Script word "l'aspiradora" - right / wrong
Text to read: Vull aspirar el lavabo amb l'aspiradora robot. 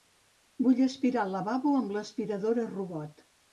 right